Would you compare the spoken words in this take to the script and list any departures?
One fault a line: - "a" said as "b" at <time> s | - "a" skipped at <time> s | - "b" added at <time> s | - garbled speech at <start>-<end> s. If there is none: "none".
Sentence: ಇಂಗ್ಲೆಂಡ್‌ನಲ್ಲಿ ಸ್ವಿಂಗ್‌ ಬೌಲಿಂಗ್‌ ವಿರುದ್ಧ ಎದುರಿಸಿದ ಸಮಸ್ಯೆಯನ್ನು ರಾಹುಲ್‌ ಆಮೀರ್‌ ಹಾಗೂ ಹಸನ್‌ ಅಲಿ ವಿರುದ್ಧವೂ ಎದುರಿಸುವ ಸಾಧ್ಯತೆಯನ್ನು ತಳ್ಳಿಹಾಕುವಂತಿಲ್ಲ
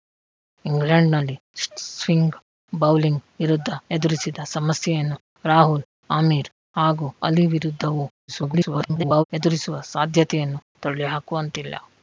- "ಹಸನ್" skipped at 7.1 s
- garbled speech at 8.3-9.2 s